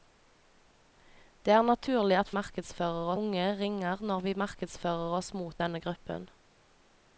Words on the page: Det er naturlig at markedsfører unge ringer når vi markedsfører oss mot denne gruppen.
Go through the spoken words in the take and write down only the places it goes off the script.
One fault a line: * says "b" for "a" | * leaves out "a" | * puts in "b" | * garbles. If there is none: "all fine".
all fine